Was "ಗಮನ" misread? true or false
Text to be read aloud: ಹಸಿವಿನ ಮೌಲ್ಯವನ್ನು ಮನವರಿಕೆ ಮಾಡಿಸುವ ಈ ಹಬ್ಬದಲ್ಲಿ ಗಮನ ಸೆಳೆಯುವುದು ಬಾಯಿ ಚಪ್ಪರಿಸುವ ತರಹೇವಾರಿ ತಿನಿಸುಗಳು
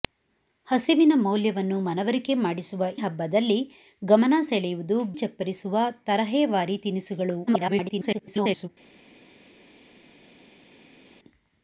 false